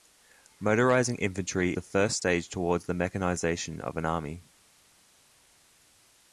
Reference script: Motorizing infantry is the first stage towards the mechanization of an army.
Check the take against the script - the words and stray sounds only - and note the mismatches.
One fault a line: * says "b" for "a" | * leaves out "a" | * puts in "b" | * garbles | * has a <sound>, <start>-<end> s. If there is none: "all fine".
* leaves out "is"